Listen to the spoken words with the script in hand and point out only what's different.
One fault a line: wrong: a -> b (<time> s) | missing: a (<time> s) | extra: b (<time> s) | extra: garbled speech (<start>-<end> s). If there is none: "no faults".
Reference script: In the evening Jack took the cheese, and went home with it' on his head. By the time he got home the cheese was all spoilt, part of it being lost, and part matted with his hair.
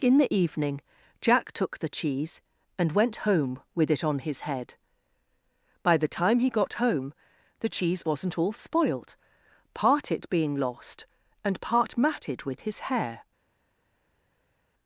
wrong: was -> wasn't (8.1 s)
missing: of (10.1 s)